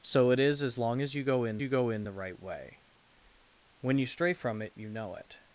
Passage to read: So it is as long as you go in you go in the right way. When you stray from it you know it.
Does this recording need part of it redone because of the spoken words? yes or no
no